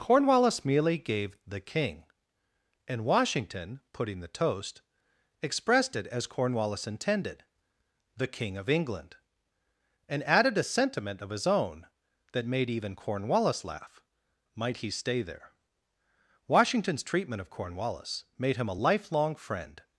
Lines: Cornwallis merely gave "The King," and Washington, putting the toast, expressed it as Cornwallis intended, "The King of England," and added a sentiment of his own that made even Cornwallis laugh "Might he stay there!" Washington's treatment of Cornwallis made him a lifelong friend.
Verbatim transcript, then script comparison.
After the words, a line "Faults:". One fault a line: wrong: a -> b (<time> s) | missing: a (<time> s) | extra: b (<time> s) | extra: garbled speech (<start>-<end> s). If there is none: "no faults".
Cornwallis merely gave "The King," and Washington, putting the toast, expressed it as Cornwallis intended, "The King of England," and added a sentiment of his own that made even Cornwallis laugh "Might he stay there!" Washington's treatment of Cornwallis made him a lifelong friend.
Faults:
no faults